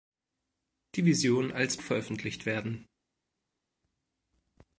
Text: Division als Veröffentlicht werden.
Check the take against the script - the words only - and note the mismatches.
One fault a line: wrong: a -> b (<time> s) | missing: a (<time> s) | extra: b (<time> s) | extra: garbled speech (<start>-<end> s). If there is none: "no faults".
no faults